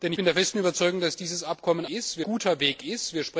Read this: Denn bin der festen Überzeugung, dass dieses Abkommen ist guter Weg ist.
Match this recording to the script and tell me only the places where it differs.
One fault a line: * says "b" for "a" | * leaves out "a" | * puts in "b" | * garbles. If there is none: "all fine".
all fine